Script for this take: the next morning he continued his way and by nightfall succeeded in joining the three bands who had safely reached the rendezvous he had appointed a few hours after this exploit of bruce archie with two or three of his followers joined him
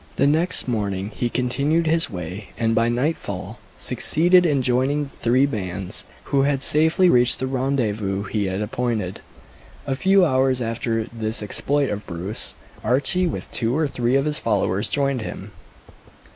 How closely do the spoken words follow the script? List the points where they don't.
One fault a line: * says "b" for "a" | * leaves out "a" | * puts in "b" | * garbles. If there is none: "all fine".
all fine